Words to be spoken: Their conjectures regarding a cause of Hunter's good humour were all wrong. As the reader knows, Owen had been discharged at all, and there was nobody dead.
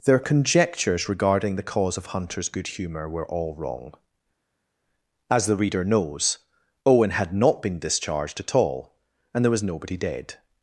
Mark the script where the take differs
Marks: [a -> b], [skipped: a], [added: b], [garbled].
Their conjectures regarding [a -> the] cause of Hunter's good humour were all wrong. As the reader knows, Owen had [added: not] been discharged at all, and there was nobody dead.